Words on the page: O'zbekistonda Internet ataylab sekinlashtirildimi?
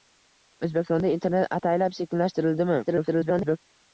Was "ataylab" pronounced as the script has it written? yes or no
yes